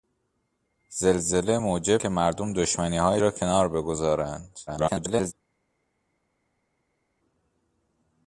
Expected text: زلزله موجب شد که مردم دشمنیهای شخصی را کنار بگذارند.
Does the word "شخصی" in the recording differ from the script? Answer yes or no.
yes